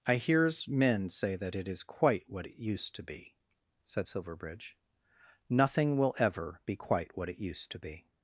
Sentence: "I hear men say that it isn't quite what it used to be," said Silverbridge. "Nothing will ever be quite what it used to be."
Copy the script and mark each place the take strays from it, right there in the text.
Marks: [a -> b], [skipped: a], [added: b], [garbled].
"I [hear -> hears] men say that it [isn't -> is] quite what it used to be," said Silverbridge. "Nothing will ever be quite what it used to be."